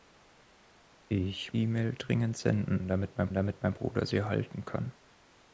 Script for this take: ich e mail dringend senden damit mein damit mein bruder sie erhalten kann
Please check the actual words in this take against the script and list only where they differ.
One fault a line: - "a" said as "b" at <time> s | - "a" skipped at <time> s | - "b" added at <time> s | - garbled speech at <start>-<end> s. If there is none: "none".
none